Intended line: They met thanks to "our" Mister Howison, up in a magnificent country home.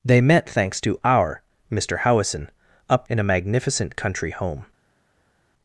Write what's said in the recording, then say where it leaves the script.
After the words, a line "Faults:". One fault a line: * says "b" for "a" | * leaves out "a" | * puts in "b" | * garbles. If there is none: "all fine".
They met thanks to "our" Mister Howison, up in a magnificent country home.
Faults:
all fine